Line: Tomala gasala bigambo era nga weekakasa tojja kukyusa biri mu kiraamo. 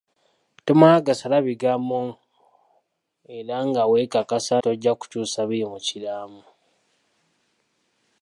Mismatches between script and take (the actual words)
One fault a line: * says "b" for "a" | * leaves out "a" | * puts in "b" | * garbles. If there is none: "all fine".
all fine